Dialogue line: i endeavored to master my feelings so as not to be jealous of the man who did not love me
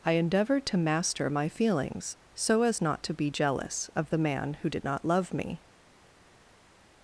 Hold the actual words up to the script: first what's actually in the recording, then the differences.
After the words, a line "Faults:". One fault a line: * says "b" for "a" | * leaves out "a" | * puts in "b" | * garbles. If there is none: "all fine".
i endeavored to master my feelings so as not to be jealous of the man who did not love me
Faults:
all fine